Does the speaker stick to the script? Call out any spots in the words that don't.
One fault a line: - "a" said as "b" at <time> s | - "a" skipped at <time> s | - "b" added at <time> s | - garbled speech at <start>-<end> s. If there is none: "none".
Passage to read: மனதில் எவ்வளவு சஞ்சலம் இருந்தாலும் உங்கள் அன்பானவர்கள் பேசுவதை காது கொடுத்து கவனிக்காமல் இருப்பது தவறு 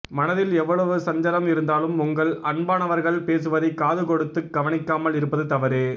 none